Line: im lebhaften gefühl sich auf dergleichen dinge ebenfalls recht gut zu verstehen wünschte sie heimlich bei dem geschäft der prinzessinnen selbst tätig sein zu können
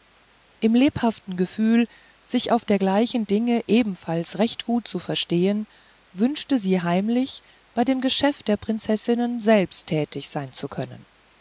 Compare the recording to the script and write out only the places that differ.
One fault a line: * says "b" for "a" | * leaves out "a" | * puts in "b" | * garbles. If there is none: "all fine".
all fine